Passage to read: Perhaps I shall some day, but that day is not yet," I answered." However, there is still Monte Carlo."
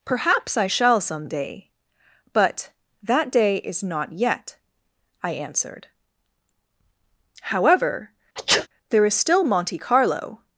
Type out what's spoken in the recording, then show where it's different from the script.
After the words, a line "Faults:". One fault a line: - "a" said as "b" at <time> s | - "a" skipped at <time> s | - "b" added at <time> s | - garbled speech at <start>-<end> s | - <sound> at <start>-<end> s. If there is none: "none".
Perhaps I shall some day, but that day is not yet," I answered." However, there is still Monte Carlo."
Faults:
- sneeze at 8.4-8.7 s